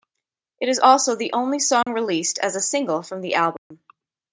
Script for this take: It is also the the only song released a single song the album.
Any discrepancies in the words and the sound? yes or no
yes